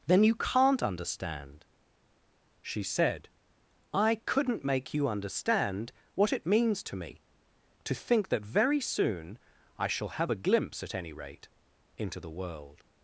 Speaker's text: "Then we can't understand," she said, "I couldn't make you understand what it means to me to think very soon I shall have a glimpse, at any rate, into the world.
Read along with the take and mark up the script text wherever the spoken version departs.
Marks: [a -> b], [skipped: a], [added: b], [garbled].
"Then [we -> you] can't understand," she said, "I couldn't make you understand what it means to me to think [added: that] very soon I shall have a glimpse, at any rate, into the world.